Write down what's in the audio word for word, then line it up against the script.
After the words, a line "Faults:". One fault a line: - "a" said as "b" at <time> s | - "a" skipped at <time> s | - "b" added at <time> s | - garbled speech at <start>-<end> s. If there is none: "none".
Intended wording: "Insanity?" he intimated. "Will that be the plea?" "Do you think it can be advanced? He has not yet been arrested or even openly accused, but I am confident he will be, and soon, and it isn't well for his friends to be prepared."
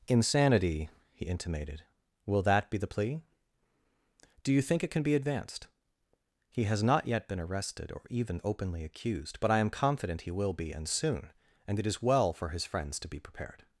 "Insanity?" he intimated. "Will that be the plea?" "Do you think it can be advanced? He has not yet been arrested or even openly accused, but I am confident he will be, and soon, and it is well for his friends to be prepared."
Faults:
- "isn't" said as "is" at 11.9 s